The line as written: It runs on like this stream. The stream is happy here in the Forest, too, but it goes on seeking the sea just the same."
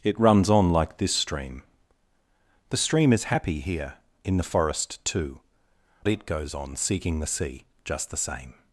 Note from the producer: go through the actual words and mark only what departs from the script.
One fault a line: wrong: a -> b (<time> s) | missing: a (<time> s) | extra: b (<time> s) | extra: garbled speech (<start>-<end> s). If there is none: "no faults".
missing: but (5.4 s)